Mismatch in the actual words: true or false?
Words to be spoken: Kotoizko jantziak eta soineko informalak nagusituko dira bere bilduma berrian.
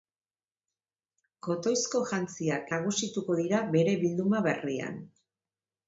true